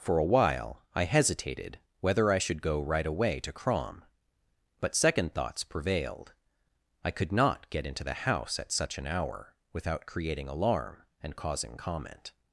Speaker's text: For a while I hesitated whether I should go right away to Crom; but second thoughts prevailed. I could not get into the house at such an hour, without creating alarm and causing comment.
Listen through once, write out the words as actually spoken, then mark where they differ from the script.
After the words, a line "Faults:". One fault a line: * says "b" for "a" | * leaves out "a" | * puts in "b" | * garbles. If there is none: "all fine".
For a while I hesitated whether I should go right away to Crom; but second thoughts prevailed. I could not get into the house at such an hour, without creating alarm and causing comment.
Faults:
all fine